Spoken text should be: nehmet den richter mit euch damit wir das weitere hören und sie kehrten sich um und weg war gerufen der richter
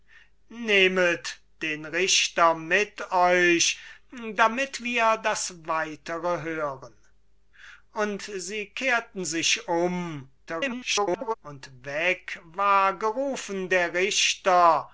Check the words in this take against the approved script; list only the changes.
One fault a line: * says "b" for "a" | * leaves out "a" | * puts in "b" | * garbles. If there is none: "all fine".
* garbles